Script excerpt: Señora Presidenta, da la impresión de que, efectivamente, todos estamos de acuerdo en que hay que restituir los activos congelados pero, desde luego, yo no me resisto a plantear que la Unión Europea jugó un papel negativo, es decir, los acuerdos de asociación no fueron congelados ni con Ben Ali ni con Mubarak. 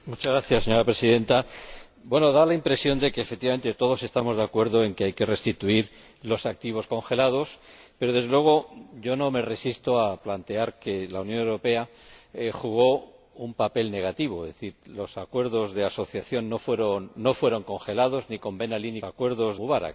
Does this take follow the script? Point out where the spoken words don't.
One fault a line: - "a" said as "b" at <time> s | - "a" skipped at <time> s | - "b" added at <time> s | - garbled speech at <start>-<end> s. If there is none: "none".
- "con" said as "acuerdos" at 19.0 s